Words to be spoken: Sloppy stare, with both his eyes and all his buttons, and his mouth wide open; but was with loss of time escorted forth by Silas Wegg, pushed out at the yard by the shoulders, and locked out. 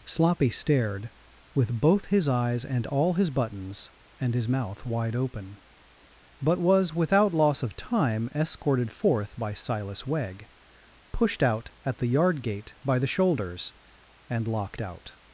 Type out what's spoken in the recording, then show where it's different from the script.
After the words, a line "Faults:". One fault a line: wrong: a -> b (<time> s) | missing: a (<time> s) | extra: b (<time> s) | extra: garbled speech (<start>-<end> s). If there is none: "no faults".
Sloppy stared, with both his eyes and all his buttons, and his mouth wide open; but was without loss of time escorted forth by Silas Wegg, pushed out at the yard gate by the shoulders, and locked out.
Faults:
wrong: stare -> stared (0.5 s)
wrong: with -> without (7.0 s)
extra: gate (12.4 s)